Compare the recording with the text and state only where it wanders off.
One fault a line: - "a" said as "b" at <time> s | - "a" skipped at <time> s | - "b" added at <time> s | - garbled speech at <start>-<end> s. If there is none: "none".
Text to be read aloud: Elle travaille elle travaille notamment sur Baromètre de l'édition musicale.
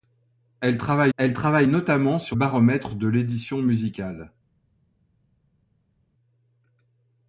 none